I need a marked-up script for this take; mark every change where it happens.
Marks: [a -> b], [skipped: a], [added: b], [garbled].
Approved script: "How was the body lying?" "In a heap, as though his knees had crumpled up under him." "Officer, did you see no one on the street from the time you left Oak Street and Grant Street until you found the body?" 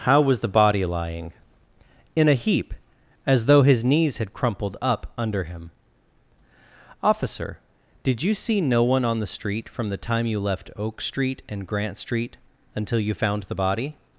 "How was the body lying?" "In a heap, as though his knees had crumpled up under him." "Officer, did you see no one on the street from the time you left Oak Street and Grant Street until you found the body?"